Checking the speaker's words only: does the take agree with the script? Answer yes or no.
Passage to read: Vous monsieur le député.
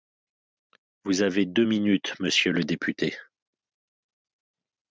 no